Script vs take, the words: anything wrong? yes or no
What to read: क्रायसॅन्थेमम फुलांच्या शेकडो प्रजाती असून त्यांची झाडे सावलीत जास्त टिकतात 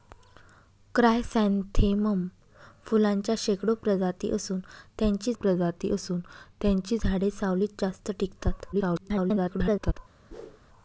yes